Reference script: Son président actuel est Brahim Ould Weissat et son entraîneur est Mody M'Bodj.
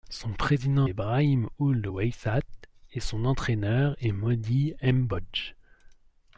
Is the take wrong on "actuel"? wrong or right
wrong